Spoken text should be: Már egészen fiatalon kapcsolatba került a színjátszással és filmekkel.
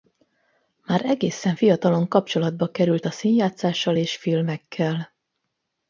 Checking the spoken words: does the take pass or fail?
pass